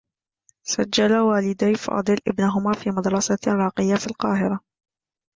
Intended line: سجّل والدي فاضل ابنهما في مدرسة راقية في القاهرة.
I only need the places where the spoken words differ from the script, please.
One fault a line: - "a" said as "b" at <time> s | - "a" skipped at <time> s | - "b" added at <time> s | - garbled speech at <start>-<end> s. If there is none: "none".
none